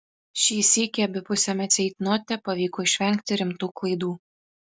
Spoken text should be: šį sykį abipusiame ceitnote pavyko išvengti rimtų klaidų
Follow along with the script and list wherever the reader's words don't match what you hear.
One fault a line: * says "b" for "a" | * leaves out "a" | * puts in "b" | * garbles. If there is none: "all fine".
all fine